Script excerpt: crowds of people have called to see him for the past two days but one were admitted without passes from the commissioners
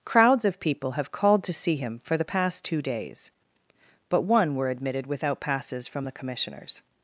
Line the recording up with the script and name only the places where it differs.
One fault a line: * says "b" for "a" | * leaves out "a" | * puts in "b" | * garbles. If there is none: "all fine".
all fine